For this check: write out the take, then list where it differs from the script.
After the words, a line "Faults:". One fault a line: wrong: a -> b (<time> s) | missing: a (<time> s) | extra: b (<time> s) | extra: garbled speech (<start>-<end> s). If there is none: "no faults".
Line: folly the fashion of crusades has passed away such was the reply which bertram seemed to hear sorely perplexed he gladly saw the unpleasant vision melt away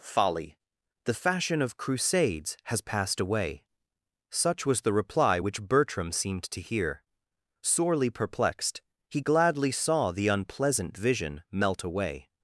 folly the fashion of crusades has passed away such was the reply which bertram seemed to hear sorely perplexed he gladly saw the unpleasant vision melt away
Faults:
no faults